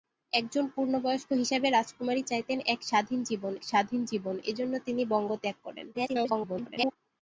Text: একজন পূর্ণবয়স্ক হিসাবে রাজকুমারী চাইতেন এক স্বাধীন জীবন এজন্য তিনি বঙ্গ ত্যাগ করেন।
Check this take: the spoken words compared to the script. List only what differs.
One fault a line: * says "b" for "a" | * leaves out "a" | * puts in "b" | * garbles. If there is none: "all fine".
* puts in "স্বাধীন জীবন"
* garbles